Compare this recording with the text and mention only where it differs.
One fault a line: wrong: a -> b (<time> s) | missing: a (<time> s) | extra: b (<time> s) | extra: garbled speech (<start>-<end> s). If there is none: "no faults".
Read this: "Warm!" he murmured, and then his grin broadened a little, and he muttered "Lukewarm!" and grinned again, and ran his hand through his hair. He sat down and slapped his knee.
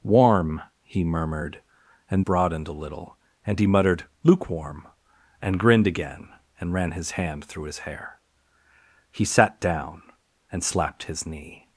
missing: then his grin (2.2 s)